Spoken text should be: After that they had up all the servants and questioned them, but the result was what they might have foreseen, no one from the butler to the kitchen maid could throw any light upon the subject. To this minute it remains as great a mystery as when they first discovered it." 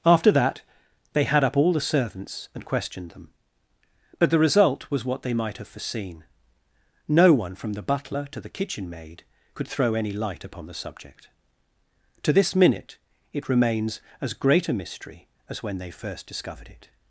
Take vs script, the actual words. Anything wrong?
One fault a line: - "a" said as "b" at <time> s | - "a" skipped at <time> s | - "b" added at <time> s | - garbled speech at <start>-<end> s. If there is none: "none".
none